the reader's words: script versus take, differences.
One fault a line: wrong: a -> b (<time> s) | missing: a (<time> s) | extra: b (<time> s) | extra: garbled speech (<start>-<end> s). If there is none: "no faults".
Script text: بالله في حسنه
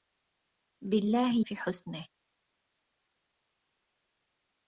no faults